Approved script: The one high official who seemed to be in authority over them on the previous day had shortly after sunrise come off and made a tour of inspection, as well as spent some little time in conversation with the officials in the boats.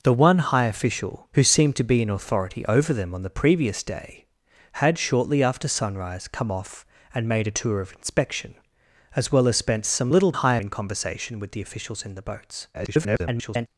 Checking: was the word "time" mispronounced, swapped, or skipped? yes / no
yes